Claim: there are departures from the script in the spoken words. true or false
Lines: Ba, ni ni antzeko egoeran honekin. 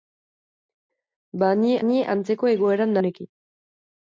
false